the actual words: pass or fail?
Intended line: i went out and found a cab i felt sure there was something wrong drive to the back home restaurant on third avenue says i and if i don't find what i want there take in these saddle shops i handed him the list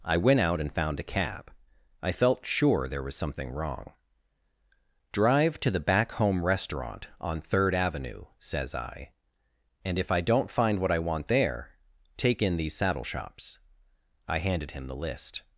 pass